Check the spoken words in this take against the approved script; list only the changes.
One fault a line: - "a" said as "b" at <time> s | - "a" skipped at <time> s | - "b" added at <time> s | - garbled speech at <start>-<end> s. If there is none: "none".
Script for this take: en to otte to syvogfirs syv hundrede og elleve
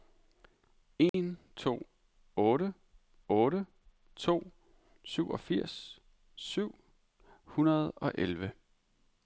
- "otte" added at 3.3 s